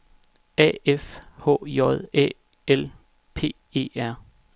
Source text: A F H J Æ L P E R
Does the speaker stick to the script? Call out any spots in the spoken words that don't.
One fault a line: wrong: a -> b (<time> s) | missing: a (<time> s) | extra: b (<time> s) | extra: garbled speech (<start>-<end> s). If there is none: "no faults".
no faults